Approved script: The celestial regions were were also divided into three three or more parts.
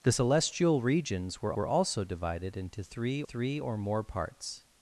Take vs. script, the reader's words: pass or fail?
pass